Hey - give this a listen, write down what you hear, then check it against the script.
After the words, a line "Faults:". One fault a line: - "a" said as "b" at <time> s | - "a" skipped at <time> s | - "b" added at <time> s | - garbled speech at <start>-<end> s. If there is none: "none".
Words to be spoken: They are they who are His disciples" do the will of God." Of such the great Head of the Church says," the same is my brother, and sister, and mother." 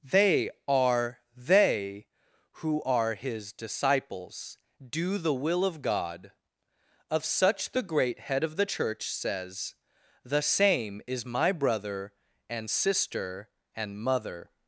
They are they who are His disciples" do the will of God." Of such the great Head of the Church says," the same is my brother, and sister, and mother."
Faults:
none